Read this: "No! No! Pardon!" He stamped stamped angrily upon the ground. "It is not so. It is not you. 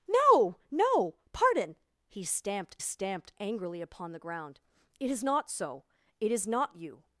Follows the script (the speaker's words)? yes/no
yes